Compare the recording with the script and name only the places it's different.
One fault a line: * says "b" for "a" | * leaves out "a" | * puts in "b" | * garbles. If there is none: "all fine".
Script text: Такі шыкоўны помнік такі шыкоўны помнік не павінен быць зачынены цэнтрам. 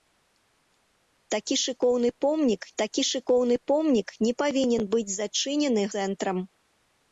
all fine